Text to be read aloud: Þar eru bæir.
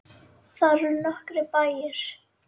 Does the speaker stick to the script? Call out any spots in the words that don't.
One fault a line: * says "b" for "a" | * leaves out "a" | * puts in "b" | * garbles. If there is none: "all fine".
* puts in "nokkrir"